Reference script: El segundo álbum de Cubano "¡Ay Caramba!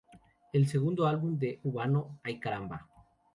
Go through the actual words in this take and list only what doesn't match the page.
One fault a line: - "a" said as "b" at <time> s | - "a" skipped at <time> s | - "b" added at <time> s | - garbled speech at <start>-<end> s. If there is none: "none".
none